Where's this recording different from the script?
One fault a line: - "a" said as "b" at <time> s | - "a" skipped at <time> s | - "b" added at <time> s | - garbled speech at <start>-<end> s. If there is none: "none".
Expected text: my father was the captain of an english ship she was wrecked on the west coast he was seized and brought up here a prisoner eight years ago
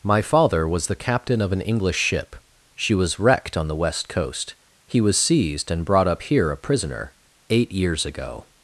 none